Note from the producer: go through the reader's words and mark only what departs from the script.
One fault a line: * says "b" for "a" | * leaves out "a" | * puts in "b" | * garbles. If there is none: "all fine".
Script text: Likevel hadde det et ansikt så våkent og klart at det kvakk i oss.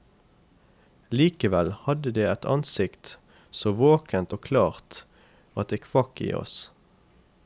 all fine